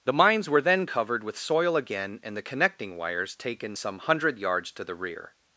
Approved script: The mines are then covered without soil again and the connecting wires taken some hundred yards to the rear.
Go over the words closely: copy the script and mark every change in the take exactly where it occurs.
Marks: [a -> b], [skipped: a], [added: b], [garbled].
The mines [are -> were] then covered [without -> with] soil again and the connecting wires taken some hundred yards to the rear.